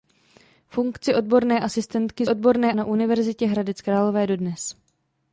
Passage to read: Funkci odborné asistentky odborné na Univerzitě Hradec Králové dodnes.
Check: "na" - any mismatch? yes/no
no